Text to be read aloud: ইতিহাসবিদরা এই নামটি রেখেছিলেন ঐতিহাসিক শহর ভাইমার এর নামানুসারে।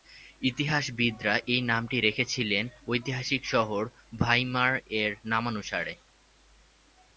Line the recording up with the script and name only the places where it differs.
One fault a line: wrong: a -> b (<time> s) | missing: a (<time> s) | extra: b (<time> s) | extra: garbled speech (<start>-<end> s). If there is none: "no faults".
no faults